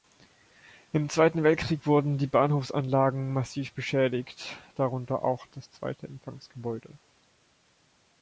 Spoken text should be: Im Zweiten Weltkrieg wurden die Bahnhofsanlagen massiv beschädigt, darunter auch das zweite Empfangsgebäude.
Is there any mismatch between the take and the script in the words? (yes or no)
no